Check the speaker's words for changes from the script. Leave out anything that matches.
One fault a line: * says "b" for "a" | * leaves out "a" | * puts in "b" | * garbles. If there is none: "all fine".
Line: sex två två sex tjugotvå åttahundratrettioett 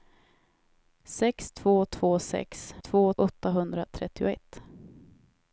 * says "två" for "tjugotvå"